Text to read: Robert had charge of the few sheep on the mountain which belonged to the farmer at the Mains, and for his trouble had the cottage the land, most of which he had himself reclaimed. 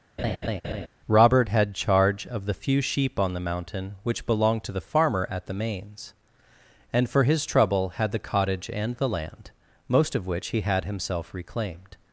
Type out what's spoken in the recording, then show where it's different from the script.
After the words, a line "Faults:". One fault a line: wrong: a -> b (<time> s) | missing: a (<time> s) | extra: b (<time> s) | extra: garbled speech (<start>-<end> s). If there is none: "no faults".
Robert had charge of the few sheep on the mountain which belonged to the farmer at the Mains, and for his trouble had the cottage and the land, most of which he had himself reclaimed.
Faults:
extra: and (8.7 s)